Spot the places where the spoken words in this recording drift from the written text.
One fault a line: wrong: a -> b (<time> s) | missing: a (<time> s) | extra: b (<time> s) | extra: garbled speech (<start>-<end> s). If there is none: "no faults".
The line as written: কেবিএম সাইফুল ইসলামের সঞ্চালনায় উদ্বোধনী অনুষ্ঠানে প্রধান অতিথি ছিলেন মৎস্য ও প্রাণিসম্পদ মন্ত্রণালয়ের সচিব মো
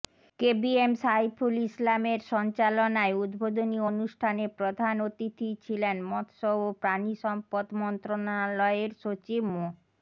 no faults